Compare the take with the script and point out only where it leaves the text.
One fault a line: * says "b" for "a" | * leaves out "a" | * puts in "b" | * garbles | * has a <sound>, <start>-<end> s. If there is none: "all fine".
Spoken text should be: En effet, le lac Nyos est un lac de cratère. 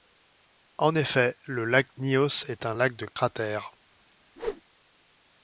* has a dropout, 3.1-3.2 s
* has a whoosh, 4.4-4.6 s